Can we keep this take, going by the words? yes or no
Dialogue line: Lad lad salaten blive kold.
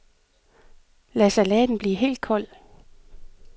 no